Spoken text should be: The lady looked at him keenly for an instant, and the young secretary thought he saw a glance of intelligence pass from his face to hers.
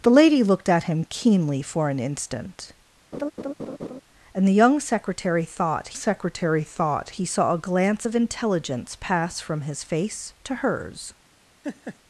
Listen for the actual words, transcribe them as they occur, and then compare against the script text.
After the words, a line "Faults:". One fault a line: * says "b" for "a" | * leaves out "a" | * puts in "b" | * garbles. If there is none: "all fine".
The lady looked at him keenly for an instant, and the young secretary thought secretary thought he saw a glance of intelligence pass from his face to hers.
Faults:
* puts in "secretary thought"